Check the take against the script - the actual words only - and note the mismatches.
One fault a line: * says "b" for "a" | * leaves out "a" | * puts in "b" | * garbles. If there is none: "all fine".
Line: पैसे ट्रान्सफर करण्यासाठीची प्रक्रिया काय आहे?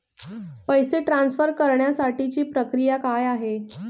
all fine